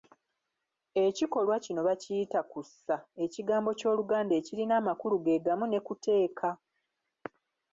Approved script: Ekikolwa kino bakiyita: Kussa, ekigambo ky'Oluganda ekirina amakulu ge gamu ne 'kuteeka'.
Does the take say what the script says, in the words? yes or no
yes